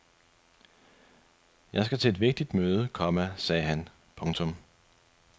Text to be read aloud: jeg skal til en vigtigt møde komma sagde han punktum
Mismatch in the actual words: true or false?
true